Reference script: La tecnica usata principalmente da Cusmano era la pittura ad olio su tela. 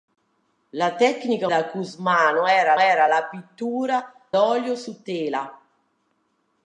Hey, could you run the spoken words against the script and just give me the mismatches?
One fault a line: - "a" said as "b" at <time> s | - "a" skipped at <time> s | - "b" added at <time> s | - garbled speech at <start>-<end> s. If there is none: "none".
- "usata principalmente" skipped at 1.5 s
- "era" added at 2.8 s
- "ad" skipped at 4.1 s